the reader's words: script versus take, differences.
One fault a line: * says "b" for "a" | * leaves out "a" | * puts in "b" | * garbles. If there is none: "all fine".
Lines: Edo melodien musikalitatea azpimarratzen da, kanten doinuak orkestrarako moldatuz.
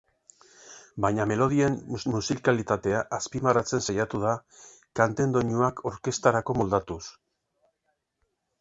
* says "Baina" for "Edo"
* puts in "saiatu"